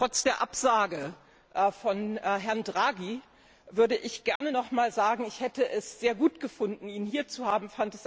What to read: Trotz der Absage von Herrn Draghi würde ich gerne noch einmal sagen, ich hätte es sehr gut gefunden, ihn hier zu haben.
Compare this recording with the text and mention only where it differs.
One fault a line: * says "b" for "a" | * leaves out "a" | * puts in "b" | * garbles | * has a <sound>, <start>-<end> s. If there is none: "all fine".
* has a dropout, 4.4-4.4 s